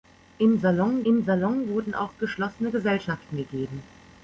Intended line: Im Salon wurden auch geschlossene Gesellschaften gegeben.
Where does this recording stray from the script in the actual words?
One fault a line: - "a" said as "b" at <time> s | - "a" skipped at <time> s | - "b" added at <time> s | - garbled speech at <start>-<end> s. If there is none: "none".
- "im Salon" added at 1.0 s